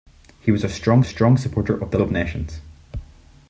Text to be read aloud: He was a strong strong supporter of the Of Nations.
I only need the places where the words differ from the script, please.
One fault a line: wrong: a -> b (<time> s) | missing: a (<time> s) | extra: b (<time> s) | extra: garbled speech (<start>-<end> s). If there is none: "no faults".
no faults